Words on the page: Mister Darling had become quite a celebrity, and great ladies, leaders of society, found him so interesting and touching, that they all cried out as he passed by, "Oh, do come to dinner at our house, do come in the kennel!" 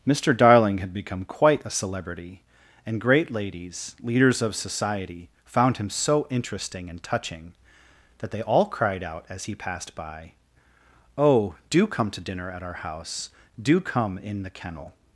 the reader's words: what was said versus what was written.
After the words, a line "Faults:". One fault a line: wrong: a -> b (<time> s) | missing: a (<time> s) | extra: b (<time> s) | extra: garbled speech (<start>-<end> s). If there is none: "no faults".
Mister Darling had become quite a celebrity, and great ladies, leaders of society, found him so interesting and touching, that they all cried out as he passed by, "Oh, do come to dinner at our house, do come in the kennel!"
Faults:
no faults